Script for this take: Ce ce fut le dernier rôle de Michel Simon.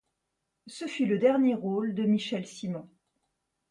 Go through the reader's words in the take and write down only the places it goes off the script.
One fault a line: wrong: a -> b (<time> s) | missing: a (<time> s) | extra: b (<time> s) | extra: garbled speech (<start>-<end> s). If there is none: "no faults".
missing: ce (0.9 s)